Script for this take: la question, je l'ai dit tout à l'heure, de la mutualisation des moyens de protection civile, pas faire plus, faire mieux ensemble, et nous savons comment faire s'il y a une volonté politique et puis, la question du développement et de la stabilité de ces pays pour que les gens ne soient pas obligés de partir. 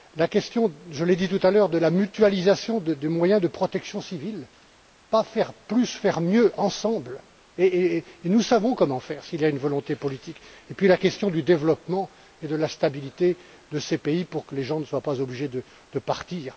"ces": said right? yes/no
yes